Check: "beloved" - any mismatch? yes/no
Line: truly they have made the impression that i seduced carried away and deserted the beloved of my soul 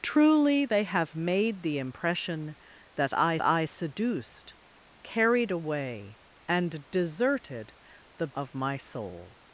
yes